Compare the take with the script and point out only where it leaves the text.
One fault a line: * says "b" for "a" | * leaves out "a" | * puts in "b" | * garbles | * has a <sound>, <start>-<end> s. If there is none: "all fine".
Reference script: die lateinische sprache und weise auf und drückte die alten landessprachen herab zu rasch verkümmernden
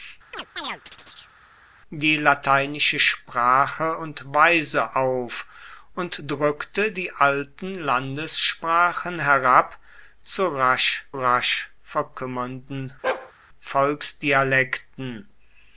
* has a chirp, 0.3-1.3 s
* puts in "rasch"
* has a bark, 13.0-13.3 s